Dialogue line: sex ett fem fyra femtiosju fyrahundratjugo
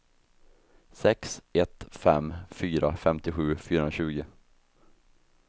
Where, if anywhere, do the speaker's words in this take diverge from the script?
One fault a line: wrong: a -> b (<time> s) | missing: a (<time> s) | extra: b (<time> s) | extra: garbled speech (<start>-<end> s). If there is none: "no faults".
no faults